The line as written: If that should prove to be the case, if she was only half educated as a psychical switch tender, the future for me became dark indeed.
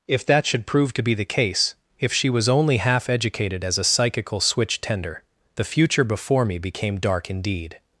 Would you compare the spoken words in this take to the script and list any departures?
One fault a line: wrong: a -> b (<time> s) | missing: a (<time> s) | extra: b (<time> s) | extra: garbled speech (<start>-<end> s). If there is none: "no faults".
wrong: for -> before (6.0 s)